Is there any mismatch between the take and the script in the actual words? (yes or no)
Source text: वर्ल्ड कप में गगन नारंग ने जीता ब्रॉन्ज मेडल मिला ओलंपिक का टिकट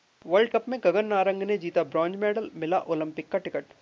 no